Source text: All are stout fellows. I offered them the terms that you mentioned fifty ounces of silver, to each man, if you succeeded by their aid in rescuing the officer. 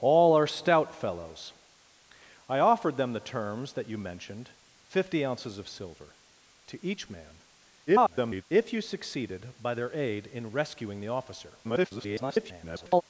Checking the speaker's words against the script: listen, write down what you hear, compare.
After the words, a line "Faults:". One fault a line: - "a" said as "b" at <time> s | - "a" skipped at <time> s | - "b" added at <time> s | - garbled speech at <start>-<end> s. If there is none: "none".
All are stout fellows. I offered them the terms that you mentioned fifty ounces of silver, to each man, [garbled] if you succeeded by their aid in rescuing the officer. [garbled]
Faults:
- garbled speech at 7.9-8.4 s
- garbled speech at 11.6-13.0 s